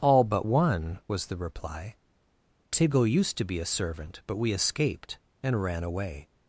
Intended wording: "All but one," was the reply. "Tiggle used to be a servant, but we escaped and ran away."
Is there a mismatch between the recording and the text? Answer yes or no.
no